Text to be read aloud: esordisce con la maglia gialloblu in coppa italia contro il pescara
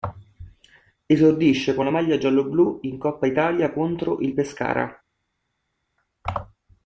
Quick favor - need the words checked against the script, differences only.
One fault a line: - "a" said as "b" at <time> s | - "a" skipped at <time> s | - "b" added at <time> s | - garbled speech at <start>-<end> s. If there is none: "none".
none